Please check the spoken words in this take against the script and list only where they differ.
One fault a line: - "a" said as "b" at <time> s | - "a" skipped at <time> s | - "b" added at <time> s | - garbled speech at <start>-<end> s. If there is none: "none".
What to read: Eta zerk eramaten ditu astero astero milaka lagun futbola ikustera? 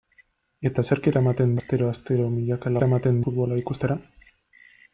- "ditu" skipped at 1.5 s
- "lagun" said as "eramaten" at 2.8 s